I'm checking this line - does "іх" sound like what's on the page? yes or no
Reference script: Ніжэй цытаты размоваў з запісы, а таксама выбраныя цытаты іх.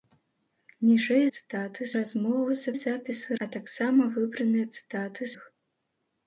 yes